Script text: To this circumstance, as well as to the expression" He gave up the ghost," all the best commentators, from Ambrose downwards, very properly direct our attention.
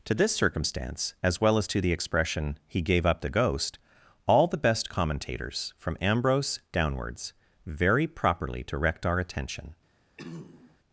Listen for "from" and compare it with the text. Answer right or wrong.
right